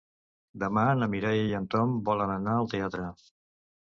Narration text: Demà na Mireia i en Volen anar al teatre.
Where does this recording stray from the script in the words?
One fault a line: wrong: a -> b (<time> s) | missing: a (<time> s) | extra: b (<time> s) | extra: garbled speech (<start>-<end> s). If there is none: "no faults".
extra: Tom (1.7 s)